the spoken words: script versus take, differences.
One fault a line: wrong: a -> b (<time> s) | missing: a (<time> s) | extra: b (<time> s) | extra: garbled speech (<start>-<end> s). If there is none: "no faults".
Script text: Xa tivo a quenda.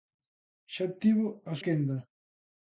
no faults